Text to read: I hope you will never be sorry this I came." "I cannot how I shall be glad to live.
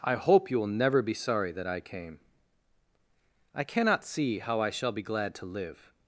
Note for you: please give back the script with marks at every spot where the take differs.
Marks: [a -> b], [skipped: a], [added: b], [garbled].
I hope you will never be sorry [this -> that] I came." "I cannot [added: see] how I shall be glad to live.